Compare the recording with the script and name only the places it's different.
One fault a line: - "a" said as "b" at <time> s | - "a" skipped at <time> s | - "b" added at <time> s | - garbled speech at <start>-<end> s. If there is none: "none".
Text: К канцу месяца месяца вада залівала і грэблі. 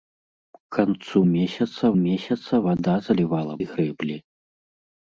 none